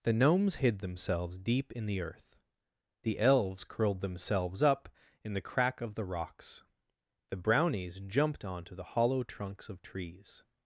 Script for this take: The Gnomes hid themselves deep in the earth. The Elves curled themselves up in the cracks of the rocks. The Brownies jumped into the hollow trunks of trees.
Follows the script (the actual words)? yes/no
no